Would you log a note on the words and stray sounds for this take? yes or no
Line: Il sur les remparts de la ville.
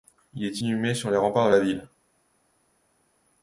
yes